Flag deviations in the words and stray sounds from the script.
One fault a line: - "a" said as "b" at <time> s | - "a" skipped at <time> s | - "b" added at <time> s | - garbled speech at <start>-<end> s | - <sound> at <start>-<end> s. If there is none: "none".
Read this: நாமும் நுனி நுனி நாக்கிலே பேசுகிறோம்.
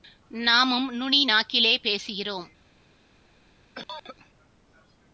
- "நுனி" skipped at 1.3 s
- cough at 3.8-4.2 s